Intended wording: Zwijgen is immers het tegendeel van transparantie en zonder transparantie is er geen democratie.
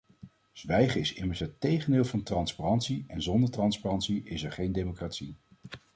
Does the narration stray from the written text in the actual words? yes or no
no